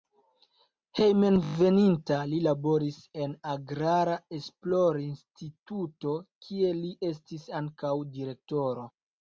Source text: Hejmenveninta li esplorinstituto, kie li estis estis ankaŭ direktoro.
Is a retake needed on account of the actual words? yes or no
yes